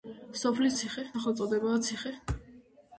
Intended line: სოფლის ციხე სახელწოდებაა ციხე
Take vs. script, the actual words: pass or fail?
pass